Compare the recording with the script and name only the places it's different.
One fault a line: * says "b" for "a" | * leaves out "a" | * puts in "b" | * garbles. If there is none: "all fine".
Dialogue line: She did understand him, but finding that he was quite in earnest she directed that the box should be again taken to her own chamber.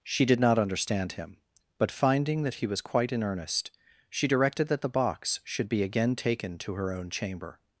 * puts in "not"